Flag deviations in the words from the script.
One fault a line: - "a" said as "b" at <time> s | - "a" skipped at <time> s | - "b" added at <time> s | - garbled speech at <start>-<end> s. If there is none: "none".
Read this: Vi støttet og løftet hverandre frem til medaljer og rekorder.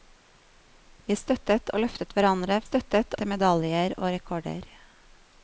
- "frem" said as "støttet" at 2.6 s